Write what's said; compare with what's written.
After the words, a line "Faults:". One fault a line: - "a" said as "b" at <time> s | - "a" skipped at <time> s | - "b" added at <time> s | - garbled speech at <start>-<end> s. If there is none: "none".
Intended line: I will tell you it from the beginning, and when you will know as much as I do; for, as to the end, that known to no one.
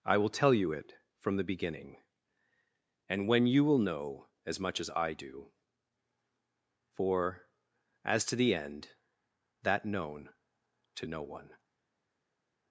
I will tell you it from the beginning, and when you will know as much as I do; for, as to the end, that known to no one.
Faults:
none